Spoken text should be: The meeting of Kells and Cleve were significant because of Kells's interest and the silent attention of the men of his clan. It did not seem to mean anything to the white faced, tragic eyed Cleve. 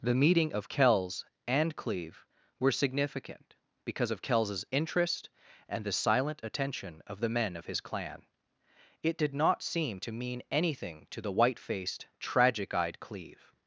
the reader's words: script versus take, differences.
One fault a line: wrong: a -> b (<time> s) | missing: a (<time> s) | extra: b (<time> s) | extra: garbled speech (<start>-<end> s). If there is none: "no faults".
no faults